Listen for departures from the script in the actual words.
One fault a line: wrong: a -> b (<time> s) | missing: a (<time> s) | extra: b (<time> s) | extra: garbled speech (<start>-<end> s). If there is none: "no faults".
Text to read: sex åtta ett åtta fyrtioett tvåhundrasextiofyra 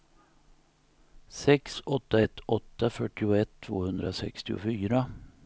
no faults